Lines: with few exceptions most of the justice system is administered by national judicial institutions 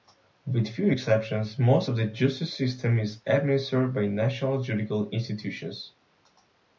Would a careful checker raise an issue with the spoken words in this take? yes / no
no